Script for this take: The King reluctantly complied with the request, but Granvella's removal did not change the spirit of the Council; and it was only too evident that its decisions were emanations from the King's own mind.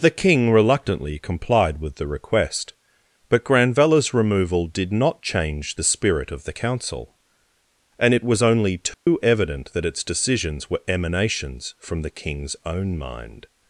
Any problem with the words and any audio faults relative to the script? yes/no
yes